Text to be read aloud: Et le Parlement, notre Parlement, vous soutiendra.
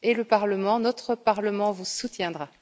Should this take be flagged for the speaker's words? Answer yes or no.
no